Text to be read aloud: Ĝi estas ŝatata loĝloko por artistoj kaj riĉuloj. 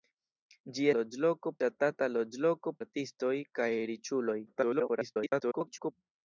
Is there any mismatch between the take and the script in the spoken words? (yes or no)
yes